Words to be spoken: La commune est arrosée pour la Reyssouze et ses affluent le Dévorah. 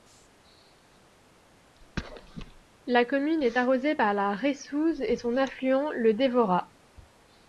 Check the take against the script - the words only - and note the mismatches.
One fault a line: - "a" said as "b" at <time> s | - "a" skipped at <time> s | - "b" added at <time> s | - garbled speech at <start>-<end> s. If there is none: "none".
- "pour" said as "par" at 3.9 s
- "ses" said as "son" at 5.1 s